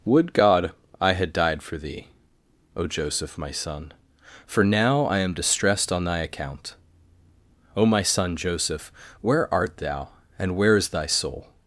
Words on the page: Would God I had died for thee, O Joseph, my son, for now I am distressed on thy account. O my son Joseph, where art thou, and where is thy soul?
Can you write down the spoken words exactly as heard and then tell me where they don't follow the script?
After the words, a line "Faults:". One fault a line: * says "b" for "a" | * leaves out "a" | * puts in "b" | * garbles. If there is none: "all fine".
Would God I had died for thee, O Joseph, my son, for now I am distressed on thy account. O my son Joseph, where art thou, and where is thy soul?
Faults:
all fine